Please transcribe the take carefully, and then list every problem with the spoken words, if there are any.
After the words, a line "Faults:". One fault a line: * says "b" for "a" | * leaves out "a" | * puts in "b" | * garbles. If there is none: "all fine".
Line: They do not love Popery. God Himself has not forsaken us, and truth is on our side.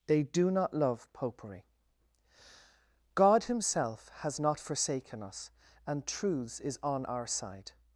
They do not love Popery. God Himself has not forsaken us, and truths is on our side.
Faults:
* says "truths" for "truth"